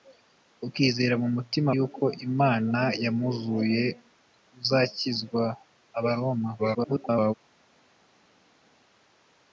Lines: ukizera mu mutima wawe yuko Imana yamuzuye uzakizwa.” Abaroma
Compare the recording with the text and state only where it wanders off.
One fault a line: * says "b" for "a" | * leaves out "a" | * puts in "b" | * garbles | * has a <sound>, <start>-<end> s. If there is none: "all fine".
* leaves out "wawe"
* garbles